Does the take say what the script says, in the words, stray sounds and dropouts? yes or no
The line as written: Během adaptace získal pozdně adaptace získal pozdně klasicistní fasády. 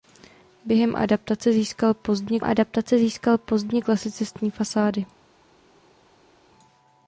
yes